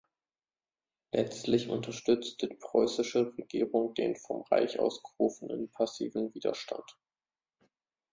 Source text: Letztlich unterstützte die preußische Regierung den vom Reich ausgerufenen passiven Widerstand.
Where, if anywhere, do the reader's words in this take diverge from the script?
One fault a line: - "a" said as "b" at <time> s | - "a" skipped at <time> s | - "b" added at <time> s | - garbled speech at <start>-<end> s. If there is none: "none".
none